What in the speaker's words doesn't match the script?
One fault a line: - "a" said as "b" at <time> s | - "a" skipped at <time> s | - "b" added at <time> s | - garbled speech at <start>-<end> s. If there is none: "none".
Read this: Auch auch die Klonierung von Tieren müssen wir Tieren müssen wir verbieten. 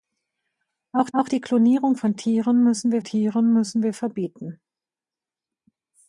none